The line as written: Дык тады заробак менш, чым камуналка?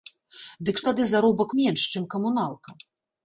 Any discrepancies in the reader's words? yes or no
no